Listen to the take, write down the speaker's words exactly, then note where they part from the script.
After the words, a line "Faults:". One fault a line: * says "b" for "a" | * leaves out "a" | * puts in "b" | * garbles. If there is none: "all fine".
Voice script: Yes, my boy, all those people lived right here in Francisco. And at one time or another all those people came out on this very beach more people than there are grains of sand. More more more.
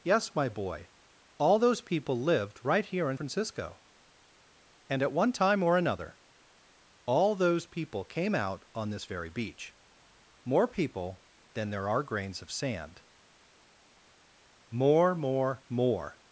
Yes, my boy, all those people lived right here in Francisco. And at one time or another all those people came out on this very beach more people than there are grains of sand. More more more.
Faults:
all fine